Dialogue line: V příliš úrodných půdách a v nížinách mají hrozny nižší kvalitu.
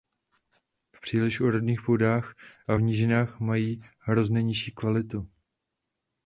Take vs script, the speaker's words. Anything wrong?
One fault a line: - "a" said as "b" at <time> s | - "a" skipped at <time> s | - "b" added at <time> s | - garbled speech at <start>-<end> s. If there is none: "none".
none